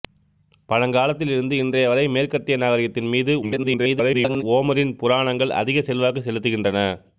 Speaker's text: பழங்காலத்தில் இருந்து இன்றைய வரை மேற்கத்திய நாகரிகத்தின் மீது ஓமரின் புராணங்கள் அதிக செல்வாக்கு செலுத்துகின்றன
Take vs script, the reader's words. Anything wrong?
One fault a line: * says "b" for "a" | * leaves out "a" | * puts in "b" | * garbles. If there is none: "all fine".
* garbles